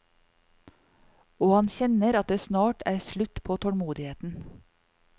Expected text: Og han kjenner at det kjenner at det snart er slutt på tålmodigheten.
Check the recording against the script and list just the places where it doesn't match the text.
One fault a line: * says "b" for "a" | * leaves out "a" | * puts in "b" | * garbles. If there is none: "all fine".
* leaves out "kjenner at det"